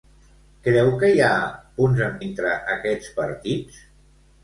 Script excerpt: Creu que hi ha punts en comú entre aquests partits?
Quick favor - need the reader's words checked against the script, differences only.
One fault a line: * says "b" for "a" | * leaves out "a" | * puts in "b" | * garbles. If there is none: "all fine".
* leaves out "comú"